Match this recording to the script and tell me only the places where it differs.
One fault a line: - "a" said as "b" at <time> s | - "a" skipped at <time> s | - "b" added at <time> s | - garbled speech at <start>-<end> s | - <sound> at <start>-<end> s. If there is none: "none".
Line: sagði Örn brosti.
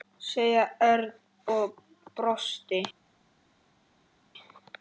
- "og" added at 1.6 s